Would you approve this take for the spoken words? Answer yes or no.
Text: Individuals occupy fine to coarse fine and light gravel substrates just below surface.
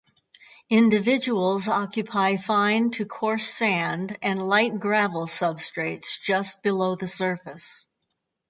no